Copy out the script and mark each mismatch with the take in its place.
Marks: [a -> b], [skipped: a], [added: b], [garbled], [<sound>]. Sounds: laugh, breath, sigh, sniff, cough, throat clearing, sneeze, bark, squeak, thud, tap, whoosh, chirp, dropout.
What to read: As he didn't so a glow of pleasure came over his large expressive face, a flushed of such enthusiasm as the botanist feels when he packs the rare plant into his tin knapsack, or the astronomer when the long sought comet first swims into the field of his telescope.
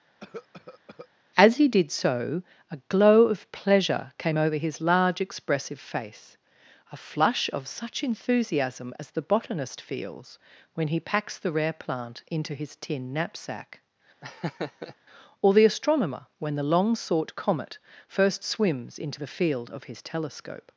[cough] As he [didn't -> did] so a glow of pleasure came over his large expressive face, a [flushed -> flush] of such enthusiasm as the botanist feels when he packs the rare plant into his tin knapsack, [laugh] or the astronomer when the long sought comet first swims into the field of his telescope.